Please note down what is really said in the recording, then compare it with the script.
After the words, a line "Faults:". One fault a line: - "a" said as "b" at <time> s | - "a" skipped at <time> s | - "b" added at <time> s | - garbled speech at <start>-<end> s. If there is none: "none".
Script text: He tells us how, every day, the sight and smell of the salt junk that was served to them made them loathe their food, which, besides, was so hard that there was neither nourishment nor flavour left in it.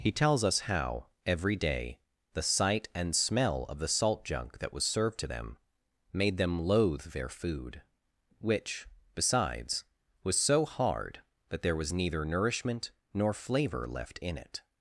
He tells us how, every day, the sight and smell of the salt junk that was served to them made them loathe their food, which, besides, was so hard that there was neither nourishment nor flavour left in it.
Faults:
none